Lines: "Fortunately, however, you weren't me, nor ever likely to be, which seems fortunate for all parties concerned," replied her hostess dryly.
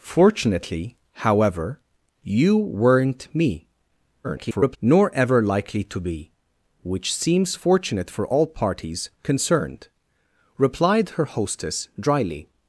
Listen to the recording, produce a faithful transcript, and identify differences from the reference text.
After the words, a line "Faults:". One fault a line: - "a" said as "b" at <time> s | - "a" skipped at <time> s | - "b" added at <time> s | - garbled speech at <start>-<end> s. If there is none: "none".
"Fortunately, however, you weren't me, [garbled] nor ever likely to be, which seems fortunate for all parties concerned," replied her hostess dryly.
Faults:
- garbled speech at 4.2-4.8 s